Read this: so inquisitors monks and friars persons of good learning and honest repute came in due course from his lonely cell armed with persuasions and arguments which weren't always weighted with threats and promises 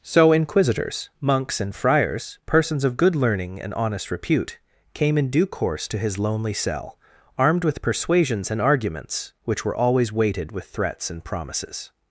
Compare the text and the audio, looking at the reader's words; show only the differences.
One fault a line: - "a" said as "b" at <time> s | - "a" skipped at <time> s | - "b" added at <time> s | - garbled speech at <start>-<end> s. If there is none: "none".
- "from" said as "to" at 5.9 s
- "weren't" said as "were" at 9.6 s